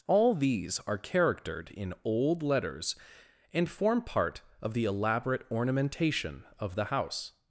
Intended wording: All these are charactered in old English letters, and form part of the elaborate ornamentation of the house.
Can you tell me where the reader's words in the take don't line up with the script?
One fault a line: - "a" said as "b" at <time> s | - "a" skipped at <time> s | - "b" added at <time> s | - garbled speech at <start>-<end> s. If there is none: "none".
- "English" skipped at 2.4 s